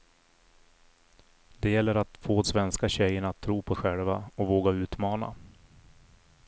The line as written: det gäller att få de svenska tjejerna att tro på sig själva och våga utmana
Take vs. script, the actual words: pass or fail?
fail